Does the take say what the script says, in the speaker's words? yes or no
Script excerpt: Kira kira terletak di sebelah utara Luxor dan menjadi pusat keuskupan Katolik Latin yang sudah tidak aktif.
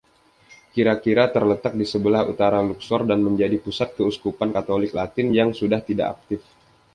yes